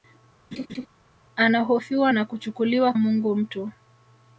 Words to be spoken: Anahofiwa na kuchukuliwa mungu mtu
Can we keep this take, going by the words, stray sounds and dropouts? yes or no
no